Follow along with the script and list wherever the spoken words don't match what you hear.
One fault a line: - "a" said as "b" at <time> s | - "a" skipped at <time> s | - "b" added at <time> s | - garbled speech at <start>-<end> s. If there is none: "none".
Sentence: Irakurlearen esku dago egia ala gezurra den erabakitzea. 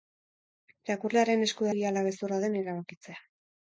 - "dago" skipped at 1.7 s